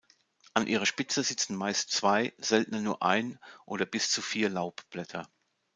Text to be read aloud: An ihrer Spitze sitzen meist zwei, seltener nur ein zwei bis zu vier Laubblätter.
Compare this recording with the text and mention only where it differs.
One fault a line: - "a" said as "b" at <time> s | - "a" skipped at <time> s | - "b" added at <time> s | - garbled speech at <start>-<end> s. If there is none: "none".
- "zwei" said as "oder" at 3.6 s